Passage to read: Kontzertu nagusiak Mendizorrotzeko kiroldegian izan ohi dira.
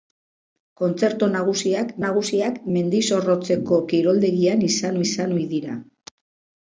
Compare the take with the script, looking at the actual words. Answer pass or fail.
fail